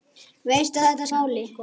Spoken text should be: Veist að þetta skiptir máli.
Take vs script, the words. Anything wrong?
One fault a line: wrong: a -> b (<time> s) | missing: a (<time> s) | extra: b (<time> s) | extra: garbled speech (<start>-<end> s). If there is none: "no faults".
missing: skiptir (1.1 s)